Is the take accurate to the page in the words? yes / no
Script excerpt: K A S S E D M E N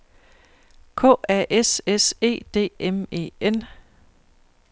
yes